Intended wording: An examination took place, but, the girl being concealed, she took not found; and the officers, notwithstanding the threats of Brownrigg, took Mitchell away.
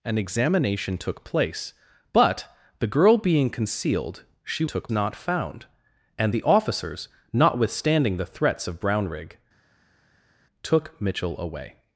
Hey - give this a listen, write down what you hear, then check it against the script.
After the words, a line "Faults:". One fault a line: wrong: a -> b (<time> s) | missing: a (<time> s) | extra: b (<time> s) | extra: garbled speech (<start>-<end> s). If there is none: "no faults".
An examination took place, but, the girl being concealed, she took not found; and the officers, notwithstanding the threats of Brownrigg, took Mitchell away.
Faults:
no faults